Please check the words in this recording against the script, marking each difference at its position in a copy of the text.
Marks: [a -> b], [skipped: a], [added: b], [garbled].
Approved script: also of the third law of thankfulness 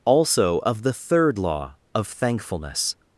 also of the third law of thankfulness